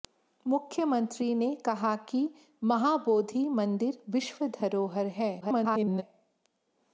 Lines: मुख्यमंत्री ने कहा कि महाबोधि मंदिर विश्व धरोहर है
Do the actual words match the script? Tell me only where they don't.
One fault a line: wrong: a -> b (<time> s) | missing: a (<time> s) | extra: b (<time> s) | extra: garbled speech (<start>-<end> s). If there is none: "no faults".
extra: garbled speech (5.4-6.0 s)